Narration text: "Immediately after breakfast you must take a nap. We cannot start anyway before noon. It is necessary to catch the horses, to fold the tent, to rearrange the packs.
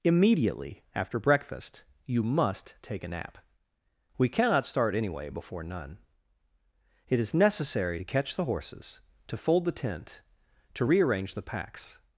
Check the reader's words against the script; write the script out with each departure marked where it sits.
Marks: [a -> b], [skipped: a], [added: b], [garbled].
"Immediately after breakfast you must take a nap. We cannot start anyway before [noon. -> none] It is necessary to catch the horses, to fold the tent, to rearrange the packs.